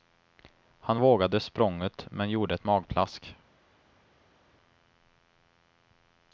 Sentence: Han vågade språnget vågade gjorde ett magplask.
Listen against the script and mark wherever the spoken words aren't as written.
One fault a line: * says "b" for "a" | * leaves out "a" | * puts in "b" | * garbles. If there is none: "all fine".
* says "men" for "vågade"